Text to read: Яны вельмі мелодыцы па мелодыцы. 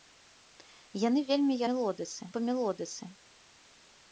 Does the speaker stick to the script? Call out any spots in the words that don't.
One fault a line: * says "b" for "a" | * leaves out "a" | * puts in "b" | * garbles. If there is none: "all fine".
all fine